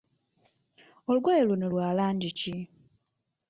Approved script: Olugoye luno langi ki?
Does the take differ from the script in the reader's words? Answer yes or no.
yes